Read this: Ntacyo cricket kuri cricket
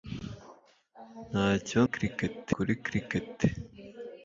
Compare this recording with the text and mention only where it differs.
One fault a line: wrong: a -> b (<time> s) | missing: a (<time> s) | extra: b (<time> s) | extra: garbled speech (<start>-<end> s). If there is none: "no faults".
no faults